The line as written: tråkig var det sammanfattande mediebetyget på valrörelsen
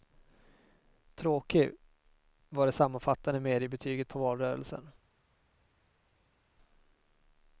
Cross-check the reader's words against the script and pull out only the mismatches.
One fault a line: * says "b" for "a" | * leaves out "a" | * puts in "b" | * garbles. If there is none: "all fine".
all fine